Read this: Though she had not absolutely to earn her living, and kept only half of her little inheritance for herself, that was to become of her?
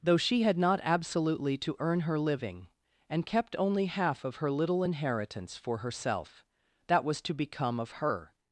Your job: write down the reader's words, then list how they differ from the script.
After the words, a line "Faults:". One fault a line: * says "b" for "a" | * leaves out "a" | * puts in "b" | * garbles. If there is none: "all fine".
Though she had not absolutely to earn her living, and kept only half of her little inheritance for herself, that was to become of her?
Faults:
all fine